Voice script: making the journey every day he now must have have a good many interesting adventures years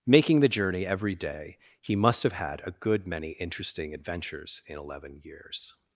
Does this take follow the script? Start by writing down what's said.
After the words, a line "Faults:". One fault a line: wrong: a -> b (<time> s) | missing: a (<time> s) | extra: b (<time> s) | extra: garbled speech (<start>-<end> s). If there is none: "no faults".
making the journey every day he must have had a good many interesting adventures in eleven years
Faults:
missing: now (1.9 s)
wrong: have -> had (2.3 s)
extra: in eleven (4.7 s)